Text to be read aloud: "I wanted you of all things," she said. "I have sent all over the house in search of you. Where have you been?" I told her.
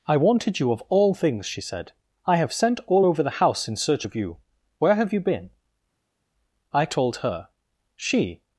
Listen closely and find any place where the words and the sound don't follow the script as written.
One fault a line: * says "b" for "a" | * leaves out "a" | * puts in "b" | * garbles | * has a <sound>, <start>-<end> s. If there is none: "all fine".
* puts in "She"